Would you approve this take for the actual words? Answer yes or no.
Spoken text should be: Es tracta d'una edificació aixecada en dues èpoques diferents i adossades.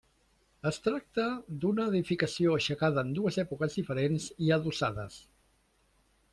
yes